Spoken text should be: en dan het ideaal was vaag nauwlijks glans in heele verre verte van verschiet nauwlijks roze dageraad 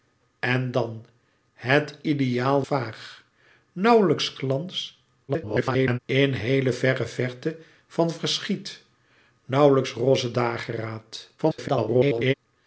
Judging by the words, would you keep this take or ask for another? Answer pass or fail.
fail